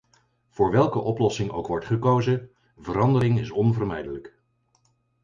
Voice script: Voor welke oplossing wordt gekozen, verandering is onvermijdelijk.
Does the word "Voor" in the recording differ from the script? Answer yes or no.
no